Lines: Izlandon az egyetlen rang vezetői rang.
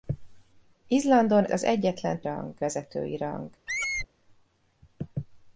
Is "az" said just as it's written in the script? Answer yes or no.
yes